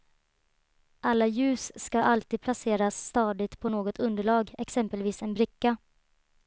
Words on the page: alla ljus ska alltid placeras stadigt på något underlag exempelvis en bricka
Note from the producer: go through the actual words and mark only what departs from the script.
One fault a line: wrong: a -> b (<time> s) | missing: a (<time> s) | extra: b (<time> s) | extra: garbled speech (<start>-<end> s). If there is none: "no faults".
no faults